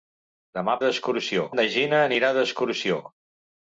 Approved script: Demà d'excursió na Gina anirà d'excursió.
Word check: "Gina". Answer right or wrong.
right